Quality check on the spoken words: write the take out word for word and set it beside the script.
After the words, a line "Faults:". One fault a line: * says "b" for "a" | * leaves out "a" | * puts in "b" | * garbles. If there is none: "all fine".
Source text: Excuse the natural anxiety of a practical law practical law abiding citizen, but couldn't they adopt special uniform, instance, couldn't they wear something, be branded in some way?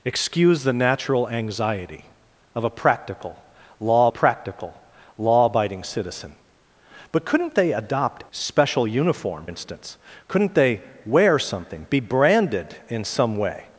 Excuse the natural anxiety of a practical law practical law abiding citizen, but couldn't they adopt special uniform, instance, couldn't they wear something, be branded in some way?
Faults:
all fine